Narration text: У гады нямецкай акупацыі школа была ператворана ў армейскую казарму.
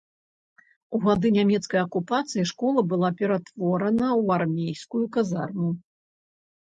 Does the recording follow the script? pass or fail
pass